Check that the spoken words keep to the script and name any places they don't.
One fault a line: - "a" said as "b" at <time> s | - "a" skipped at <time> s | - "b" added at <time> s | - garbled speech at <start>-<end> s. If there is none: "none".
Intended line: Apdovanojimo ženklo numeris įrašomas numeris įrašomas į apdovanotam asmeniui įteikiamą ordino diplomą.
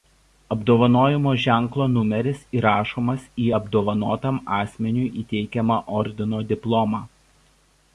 - "numeris įrašomas" skipped at 3.3 s